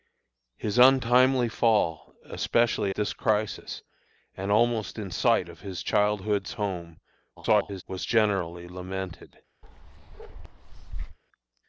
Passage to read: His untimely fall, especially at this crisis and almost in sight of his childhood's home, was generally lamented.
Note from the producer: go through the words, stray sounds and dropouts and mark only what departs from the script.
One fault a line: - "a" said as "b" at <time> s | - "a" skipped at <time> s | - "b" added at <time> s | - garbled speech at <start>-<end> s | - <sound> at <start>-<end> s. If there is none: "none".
- "at" skipped at 2.9 s
- garbled speech at 7.4-7.8 s
- bark at 9.6-11.2 s